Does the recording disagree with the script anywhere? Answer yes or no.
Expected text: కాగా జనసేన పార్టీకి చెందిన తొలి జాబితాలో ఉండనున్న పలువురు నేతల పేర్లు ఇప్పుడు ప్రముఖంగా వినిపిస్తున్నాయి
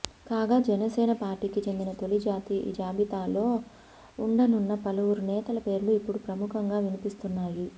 no